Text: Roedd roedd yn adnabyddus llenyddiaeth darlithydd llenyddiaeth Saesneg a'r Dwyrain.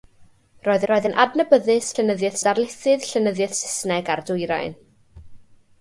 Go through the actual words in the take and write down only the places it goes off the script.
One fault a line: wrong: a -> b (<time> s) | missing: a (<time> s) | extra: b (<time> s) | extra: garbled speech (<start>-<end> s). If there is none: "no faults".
no faults